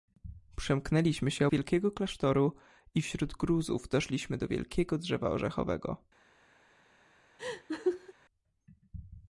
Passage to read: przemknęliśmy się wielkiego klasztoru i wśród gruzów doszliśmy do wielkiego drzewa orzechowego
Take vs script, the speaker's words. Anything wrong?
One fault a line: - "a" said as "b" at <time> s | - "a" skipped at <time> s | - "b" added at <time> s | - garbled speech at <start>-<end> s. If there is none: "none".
none